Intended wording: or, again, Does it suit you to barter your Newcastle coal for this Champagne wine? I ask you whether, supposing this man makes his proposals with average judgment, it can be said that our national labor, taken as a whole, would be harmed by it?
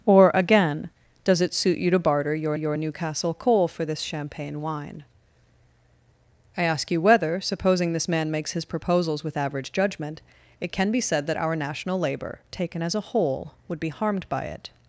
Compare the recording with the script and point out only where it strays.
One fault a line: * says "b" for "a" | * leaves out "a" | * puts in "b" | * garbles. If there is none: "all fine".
* puts in "your"